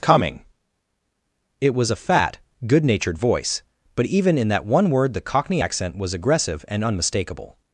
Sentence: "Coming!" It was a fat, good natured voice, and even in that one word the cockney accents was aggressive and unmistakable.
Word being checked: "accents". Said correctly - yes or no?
no